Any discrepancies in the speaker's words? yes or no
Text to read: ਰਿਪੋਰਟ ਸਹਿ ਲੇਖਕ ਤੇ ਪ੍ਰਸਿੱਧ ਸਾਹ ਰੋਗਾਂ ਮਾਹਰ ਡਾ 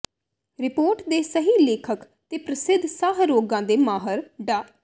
yes